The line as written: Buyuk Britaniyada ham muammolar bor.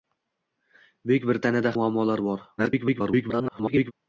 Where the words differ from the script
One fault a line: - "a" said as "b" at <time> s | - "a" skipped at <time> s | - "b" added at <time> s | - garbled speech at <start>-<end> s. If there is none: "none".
- "ham" skipped at 1.8 s
- garbled speech at 2.6-3.9 s